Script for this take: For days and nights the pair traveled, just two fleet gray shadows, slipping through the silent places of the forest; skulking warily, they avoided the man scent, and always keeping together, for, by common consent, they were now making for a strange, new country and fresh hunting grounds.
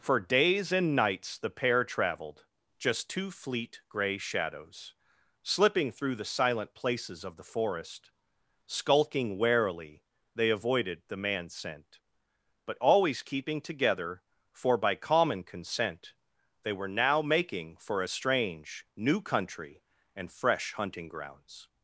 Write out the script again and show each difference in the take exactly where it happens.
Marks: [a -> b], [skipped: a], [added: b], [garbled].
For days and nights the pair traveled, just two fleet gray shadows, slipping through the silent places of the forest; skulking warily, they avoided the man scent, [and -> but] always keeping together, for, by common consent, they were now making for a strange, new country and fresh hunting grounds.